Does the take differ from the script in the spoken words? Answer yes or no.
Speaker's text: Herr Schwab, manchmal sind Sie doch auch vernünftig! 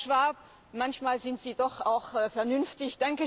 no